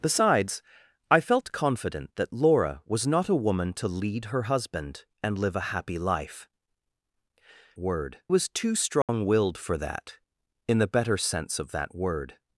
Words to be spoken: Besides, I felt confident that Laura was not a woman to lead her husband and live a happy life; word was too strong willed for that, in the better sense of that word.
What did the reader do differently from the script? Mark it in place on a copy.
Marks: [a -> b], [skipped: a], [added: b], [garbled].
Besides, I felt confident that Laura was not a woman to lead her husband and live a happy life; word was too strong willed for that, in the better sense of that word.